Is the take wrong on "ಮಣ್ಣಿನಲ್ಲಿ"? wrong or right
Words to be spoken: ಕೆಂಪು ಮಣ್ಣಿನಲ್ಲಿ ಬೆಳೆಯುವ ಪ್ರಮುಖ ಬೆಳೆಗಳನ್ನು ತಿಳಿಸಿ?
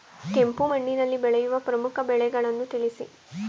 right